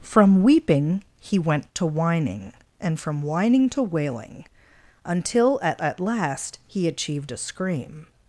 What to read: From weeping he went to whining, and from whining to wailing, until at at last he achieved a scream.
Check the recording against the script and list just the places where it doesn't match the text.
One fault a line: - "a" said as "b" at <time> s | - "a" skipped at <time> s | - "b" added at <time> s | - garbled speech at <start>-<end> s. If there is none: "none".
none